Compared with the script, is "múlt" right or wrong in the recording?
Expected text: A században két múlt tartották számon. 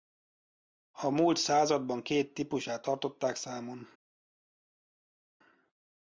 wrong